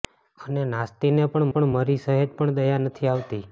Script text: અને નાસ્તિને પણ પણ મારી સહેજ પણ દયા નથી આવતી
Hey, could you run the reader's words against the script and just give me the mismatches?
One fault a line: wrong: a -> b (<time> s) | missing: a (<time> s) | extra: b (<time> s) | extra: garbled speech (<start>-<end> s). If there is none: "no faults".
no faults